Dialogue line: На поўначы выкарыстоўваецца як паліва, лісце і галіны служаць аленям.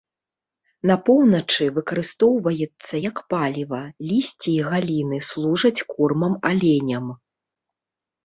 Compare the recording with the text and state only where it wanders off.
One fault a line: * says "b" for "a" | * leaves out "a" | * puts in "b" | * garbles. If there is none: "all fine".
* puts in "кормам"